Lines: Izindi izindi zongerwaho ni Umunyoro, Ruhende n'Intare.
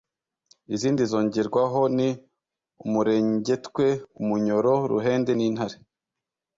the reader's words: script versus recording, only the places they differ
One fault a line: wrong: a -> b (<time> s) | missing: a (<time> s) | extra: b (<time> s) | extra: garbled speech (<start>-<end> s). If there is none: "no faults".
missing: izindi (1.0 s)
extra: Umurengetwe (2.8 s)